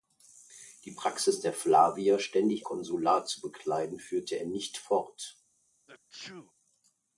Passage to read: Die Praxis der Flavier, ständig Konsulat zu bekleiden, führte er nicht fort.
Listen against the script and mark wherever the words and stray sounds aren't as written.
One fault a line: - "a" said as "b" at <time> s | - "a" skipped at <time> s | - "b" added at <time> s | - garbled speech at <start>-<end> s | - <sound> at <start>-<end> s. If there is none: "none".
- sneeze at 5.9-6.5 s